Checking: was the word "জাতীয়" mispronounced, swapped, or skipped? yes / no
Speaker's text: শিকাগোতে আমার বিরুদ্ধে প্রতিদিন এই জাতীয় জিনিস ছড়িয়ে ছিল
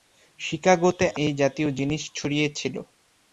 no